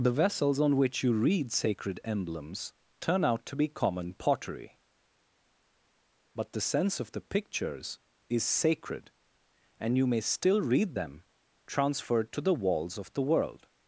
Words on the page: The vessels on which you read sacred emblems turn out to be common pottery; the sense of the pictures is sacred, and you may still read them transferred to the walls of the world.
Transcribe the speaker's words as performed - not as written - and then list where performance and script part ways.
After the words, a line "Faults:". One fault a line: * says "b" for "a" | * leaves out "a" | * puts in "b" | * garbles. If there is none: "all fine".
The vessels on which you read sacred emblems turn out to be common pottery; but the sense of the pictures is sacred, and you may still read them transferred to the walls of the world.
Faults:
* puts in "but"